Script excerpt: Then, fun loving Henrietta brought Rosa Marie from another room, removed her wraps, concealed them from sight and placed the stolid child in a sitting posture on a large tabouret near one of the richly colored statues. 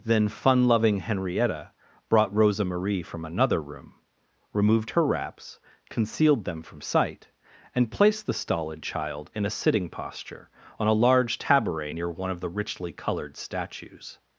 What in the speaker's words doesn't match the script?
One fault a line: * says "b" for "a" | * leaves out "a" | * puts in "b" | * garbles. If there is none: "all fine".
all fine